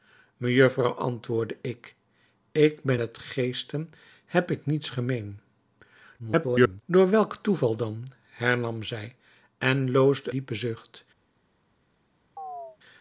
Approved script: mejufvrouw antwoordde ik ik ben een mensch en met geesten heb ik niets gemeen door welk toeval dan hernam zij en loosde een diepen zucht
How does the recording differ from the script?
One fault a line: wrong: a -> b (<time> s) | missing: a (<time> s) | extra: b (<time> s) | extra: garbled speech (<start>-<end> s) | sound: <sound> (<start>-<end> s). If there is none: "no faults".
missing: een mensch en (3.0 s)
extra: garbled speech (6.2-6.8 s)
missing: een (10.3 s)
sound: chirp (12.4-12.8 s)